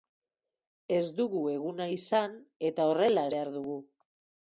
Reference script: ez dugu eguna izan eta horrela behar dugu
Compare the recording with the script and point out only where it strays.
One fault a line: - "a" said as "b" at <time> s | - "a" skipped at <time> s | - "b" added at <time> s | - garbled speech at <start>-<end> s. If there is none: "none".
none